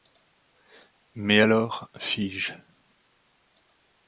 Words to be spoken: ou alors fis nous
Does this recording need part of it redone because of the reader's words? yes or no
yes